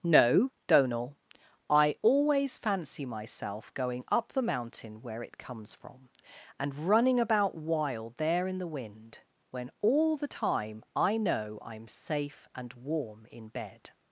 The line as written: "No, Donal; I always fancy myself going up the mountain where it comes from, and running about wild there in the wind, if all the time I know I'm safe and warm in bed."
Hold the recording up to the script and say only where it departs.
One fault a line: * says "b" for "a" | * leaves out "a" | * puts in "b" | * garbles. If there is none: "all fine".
* says "when" for "if"